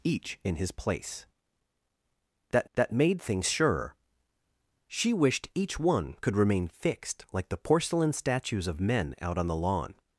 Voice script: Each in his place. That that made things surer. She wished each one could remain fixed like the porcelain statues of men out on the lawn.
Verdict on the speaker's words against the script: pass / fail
pass